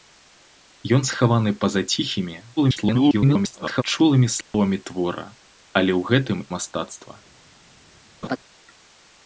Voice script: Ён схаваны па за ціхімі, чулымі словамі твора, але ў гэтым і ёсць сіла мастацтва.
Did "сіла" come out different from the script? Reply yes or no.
yes